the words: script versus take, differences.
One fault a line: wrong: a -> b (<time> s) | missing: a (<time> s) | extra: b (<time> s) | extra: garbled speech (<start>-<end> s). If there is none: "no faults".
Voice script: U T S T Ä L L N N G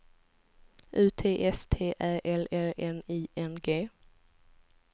extra: I (3.1 s)